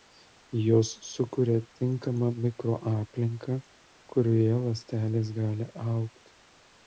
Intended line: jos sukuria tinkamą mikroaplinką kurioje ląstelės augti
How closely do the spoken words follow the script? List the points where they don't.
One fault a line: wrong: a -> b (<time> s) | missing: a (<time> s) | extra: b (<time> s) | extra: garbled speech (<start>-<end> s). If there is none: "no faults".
extra: gali (5.4 s)